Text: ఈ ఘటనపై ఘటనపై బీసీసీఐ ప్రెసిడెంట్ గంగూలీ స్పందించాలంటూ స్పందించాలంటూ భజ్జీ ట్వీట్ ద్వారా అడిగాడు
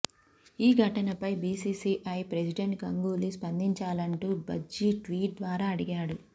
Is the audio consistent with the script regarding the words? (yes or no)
no